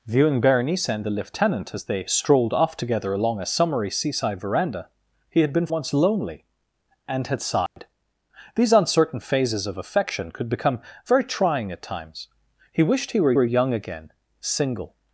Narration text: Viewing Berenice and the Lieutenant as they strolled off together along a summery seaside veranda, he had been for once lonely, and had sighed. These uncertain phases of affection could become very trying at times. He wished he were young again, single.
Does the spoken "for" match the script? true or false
false